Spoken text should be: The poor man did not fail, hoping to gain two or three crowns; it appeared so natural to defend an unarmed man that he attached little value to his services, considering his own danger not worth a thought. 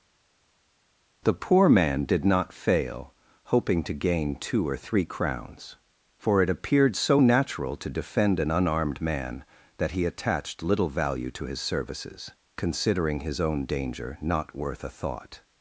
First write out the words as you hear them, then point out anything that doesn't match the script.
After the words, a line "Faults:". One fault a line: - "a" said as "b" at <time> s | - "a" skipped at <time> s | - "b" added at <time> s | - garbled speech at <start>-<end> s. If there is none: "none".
The poor man did not fail, hoping to gain two or three crowns; for it appeared so natural to defend an unarmed man that he attached little value to his services, considering his own danger not worth a thought.
Faults:
- "for" added at 6.2 s